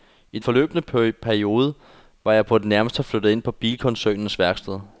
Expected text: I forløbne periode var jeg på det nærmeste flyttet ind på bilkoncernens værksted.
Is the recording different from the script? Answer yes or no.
no